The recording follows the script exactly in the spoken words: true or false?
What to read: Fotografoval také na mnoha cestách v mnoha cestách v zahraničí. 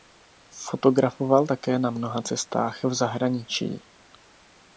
false